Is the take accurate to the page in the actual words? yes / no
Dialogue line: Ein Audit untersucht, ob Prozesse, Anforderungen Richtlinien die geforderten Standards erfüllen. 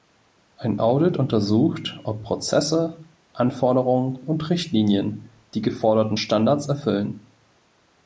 no